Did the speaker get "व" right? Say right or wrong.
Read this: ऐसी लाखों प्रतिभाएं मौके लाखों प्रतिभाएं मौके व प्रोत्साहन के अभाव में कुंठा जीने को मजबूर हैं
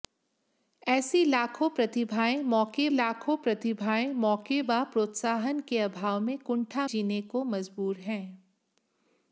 right